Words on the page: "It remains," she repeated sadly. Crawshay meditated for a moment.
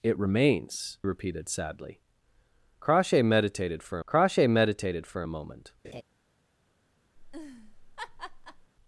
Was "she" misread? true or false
true